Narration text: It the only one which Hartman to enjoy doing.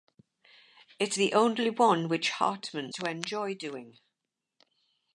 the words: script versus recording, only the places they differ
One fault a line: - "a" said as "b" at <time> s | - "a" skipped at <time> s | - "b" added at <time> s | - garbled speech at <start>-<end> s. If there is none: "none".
none